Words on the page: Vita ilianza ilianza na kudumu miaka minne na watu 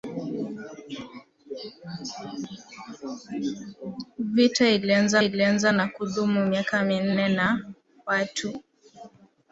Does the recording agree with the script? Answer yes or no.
yes